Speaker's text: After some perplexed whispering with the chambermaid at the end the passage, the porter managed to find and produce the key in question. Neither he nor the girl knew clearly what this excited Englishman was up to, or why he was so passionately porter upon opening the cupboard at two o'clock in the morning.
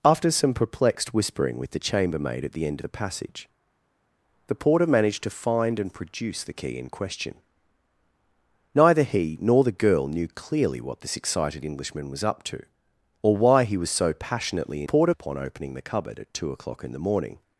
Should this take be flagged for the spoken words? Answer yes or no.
no